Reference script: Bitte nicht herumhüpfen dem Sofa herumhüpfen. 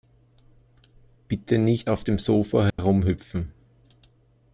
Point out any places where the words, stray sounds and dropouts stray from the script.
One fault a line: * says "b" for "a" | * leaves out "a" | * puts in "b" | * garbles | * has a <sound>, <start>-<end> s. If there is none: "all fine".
* says "auf" for "herumhüpfen"
* has a dropout, 2.7-2.8 s